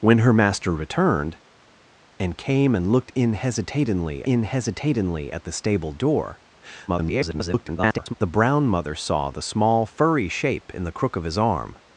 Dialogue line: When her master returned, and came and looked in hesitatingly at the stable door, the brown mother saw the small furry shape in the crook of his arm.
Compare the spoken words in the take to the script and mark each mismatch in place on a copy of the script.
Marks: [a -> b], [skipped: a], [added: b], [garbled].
When her master returned, and came and looked in hesitatingly [added: in hesitatingly] at the stable door, [garbled] the brown mother saw the small furry shape in the crook of his arm.